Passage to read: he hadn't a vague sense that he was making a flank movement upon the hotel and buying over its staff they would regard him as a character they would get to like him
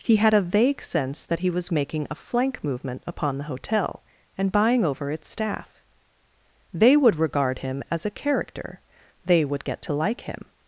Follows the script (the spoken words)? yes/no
no